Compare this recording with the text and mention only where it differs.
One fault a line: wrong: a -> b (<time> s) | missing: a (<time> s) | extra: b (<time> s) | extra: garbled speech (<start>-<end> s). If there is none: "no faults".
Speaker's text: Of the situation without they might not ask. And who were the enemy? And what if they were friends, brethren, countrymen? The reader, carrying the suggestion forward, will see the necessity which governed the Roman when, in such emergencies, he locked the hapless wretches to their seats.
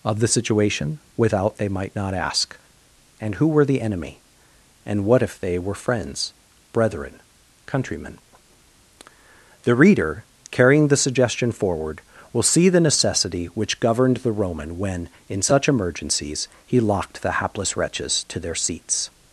no faults